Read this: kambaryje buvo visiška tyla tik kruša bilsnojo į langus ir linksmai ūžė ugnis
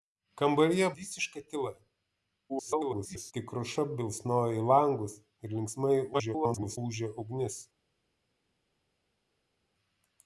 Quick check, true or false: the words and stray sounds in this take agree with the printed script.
false